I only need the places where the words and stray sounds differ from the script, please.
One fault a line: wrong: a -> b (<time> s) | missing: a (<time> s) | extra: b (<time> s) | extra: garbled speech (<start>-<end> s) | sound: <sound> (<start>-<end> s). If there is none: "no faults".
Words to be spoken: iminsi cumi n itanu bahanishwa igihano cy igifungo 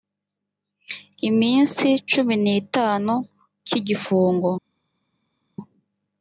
missing: bahanishwa igihano (3.1 s)